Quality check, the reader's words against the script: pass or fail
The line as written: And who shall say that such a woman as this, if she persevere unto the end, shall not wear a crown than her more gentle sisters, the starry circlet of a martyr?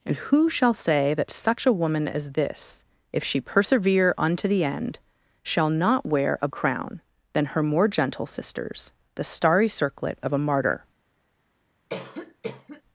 pass